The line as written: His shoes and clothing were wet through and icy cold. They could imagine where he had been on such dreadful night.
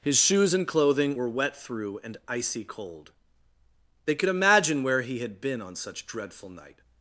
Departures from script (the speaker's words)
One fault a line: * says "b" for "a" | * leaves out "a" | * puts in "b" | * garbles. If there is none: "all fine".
all fine